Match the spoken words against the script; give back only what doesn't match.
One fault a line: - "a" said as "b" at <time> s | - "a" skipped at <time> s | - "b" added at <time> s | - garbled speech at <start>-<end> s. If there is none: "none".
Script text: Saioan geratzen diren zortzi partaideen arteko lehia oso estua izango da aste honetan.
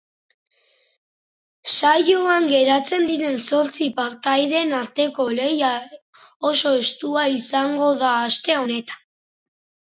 none